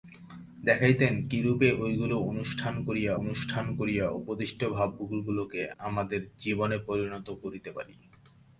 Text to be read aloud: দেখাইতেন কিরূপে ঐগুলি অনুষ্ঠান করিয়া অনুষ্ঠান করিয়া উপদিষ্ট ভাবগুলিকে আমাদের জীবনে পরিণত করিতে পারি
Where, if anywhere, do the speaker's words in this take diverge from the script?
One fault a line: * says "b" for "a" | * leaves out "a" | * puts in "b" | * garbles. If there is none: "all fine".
all fine